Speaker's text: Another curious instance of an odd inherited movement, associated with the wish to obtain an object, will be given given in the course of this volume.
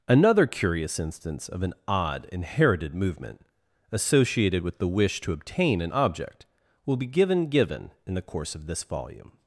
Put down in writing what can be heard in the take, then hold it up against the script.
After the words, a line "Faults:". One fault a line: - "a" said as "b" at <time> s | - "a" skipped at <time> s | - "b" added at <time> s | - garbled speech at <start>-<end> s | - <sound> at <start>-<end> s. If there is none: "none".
Another curious instance of an odd inherited movement, associated with the wish to obtain an object, will be given given in the course of this volume.
Faults:
none